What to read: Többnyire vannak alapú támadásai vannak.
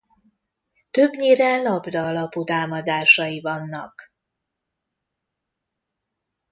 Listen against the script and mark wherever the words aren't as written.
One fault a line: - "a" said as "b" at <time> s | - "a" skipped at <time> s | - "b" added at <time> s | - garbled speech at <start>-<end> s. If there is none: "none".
- "vannak" said as "labda" at 1.6 s